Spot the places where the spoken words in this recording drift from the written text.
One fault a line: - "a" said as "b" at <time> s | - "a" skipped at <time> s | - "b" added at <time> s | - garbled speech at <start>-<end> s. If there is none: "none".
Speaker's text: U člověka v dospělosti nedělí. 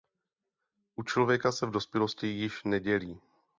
- "se" added at 1.5 s
- "již" added at 2.3 s